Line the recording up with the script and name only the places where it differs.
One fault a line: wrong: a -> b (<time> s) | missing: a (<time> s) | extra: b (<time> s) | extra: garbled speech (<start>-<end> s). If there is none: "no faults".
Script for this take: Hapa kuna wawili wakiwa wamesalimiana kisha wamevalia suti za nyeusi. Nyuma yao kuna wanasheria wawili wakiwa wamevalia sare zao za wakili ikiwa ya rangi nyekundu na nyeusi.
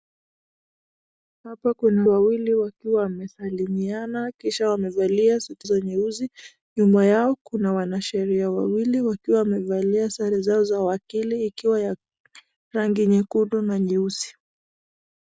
no faults